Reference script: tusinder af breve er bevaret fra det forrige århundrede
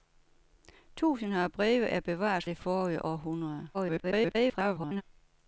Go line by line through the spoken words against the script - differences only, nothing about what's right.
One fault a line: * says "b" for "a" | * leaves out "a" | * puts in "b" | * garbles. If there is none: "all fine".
* leaves out "fra"
* garbles